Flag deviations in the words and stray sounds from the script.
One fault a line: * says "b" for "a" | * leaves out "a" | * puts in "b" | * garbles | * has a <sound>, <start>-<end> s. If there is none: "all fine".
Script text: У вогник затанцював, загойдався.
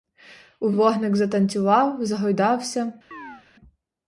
* has a chirp, 3.1-3.4 s